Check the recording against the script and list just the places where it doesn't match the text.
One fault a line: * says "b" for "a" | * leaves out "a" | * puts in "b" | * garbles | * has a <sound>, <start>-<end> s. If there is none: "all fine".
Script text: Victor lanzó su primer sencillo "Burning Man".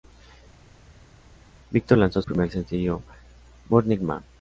* leaves out "su"